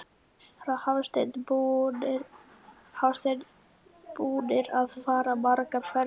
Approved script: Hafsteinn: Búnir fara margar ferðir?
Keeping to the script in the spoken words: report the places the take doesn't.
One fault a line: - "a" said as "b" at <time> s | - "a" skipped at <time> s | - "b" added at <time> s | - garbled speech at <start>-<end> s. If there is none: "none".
- "að" added at 4.8 s